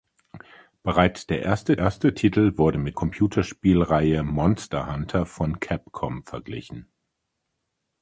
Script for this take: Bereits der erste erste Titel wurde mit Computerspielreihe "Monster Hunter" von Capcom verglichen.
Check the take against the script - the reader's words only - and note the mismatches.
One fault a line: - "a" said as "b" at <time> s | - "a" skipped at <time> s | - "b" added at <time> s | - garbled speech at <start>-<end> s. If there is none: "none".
none